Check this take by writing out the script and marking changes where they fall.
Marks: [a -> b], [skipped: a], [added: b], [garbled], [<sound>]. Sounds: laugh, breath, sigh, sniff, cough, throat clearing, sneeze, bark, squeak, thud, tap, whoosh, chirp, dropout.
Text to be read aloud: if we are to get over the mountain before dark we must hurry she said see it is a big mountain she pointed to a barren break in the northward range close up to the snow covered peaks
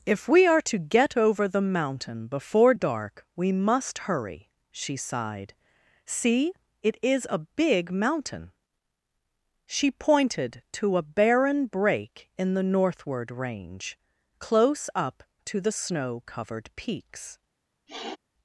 if we are to get over the mountain before dark we must hurry she [said -> sighed] see it is a big mountain she pointed to a barren break in the northward range close up to the snow covered peaks [sniff]